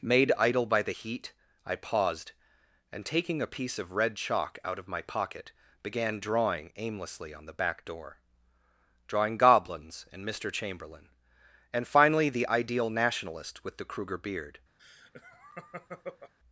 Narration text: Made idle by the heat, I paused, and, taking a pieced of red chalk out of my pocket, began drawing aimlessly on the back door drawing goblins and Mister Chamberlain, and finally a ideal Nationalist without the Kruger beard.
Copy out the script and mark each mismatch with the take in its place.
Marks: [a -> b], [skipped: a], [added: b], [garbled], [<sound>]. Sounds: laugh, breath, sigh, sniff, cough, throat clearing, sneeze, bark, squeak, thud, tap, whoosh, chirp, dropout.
Made idle by the heat, I paused, and, taking a [pieced -> piece] of red chalk out of my pocket, began drawing aimlessly on the back door drawing goblins and Mister Chamberlain, and finally [a -> the] ideal Nationalist [without -> with] the Kruger beard. [laugh]